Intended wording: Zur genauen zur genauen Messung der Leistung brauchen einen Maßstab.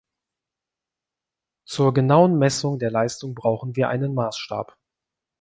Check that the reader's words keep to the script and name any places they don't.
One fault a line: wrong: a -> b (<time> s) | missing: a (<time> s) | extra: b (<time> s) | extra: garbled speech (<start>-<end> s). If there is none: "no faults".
missing: zur genauen (2.4 s)
extra: wir (3.8 s)